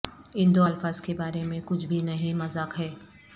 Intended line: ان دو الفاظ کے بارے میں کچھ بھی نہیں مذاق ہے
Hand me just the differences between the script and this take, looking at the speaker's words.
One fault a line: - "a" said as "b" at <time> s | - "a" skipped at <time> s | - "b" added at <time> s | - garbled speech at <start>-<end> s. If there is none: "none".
none